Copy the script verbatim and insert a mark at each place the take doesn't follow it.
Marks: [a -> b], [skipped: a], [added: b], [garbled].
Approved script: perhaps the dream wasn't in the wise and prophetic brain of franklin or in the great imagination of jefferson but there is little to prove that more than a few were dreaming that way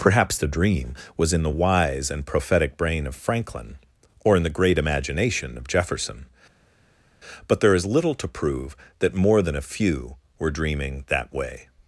perhaps the dream [wasn't -> was] in the wise and prophetic brain of franklin or in the great imagination of jefferson but there is little to prove that more than a few were dreaming that way